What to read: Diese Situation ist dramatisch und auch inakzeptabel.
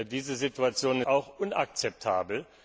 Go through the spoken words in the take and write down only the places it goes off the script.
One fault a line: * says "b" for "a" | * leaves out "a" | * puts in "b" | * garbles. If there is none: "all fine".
* leaves out "ist dramatisch und"